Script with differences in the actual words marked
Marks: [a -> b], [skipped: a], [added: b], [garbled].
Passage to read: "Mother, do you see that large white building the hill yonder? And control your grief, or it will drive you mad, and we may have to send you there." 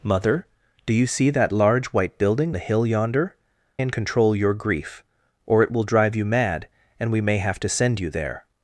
"Mother, do you see that large white building the hill yonder? And control your grief, or it will drive you mad, and we may have to send you there."